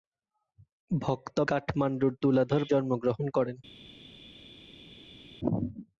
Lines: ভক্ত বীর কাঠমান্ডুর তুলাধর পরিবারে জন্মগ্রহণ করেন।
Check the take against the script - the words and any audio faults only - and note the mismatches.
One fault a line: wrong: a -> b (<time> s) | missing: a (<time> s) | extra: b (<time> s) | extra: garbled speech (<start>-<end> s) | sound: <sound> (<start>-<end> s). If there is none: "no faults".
missing: বীর (1.4 s)
missing: পরিবারে (2.6 s)